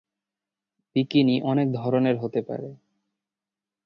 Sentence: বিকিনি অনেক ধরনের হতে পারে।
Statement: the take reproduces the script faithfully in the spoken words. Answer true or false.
true